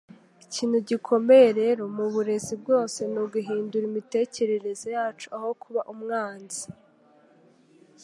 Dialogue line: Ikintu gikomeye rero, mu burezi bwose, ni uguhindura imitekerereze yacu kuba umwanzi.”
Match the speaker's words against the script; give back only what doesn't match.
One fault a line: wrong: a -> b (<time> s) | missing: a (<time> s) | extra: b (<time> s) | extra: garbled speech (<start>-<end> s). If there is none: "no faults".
extra: aho (5.4 s)